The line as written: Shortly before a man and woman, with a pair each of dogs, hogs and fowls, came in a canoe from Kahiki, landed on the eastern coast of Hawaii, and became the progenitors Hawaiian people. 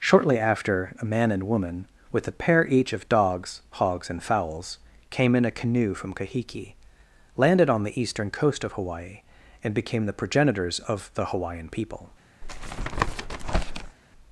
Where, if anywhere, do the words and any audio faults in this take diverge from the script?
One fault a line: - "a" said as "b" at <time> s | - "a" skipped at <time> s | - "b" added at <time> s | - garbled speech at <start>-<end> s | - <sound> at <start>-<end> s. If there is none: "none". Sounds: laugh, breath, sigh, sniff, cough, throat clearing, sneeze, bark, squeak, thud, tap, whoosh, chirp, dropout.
- "before" said as "after" at 0.4 s
- "of the" added at 10.8 s
- tap at 12.4-14.0 s